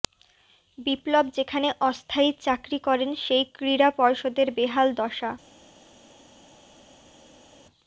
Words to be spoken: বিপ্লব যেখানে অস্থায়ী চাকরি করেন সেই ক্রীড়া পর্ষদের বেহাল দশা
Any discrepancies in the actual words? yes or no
no